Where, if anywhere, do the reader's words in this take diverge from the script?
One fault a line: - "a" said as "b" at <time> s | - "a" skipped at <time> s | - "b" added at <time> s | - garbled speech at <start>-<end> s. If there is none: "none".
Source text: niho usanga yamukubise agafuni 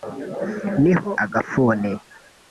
- "usanga yamukubise" skipped at 1.1 s